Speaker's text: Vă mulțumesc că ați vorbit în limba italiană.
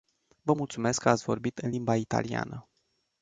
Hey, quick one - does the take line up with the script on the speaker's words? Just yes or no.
yes